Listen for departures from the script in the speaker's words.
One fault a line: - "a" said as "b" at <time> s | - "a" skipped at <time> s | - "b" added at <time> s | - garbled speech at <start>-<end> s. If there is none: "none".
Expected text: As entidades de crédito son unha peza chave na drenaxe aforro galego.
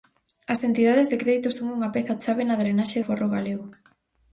none